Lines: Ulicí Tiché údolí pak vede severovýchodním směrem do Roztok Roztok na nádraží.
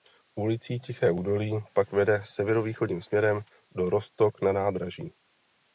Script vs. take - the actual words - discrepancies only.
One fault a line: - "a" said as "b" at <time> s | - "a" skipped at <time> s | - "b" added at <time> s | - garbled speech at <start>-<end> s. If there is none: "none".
- "Roztok" skipped at 4.4 s